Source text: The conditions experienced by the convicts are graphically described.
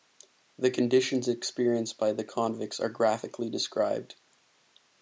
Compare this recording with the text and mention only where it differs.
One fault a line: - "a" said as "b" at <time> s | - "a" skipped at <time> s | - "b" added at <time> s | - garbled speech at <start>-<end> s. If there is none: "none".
none